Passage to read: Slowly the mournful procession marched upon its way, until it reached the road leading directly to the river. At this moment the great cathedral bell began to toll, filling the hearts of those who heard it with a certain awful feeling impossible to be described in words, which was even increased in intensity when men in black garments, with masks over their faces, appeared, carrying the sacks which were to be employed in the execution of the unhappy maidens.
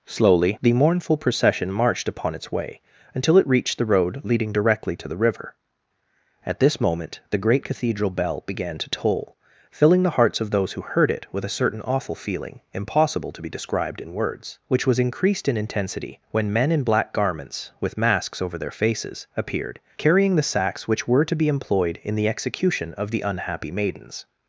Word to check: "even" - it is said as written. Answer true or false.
false